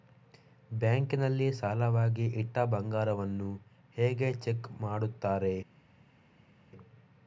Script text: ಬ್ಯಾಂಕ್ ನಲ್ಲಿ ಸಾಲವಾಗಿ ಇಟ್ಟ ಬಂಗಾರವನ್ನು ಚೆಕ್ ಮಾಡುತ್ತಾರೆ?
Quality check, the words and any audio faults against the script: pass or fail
fail